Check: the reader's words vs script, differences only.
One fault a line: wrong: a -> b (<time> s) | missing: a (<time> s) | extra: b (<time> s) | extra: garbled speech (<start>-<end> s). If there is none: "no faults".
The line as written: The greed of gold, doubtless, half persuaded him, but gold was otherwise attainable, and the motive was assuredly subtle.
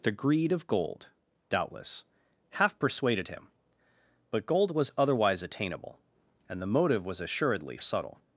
no faults